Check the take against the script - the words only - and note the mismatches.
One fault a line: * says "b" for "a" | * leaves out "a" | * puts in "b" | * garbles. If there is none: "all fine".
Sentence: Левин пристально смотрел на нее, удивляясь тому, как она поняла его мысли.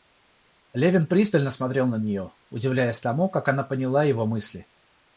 all fine